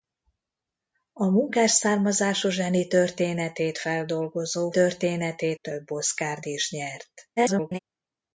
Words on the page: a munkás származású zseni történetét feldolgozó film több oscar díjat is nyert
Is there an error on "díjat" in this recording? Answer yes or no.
yes